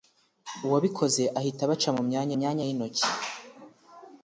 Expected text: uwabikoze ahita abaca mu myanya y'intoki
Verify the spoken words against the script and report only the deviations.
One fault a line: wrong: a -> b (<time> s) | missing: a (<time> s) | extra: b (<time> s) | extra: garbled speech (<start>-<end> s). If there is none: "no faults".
extra: myanya (2.4 s)